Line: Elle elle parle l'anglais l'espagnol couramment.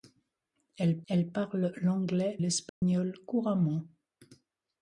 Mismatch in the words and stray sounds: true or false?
true